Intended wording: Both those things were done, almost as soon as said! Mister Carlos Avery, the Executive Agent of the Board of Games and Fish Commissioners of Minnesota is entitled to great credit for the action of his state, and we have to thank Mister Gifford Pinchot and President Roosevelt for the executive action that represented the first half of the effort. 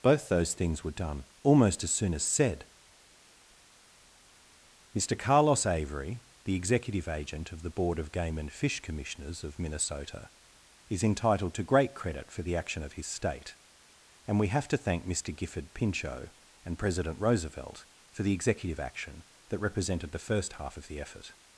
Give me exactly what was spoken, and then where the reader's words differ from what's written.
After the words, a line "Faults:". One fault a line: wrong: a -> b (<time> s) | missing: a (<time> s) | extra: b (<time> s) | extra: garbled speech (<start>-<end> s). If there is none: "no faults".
Both those things were done, almost as soon as said! Mister Carlos Avery, the Executive Agent of the Board of Game and Fish Commissioners of Minnesota is entitled to great credit for the action of his state, and we have to thank Mister Gifford Pinchot and President Roosevelt for the executive action that represented the first half of the effort.
Faults:
wrong: Games -> Game (8.1 s)